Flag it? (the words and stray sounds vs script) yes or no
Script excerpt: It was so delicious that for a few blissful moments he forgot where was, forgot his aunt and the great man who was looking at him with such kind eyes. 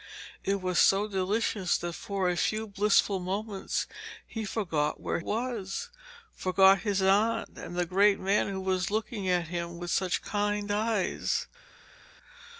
no